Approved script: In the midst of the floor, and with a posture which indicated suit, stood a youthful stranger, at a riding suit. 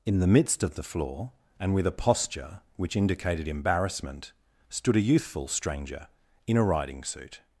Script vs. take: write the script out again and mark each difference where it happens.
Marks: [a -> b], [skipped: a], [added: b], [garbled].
In the midst of the floor, and with a posture which indicated [suit, -> embarrassment] stood a youthful stranger, [at -> in] a riding suit.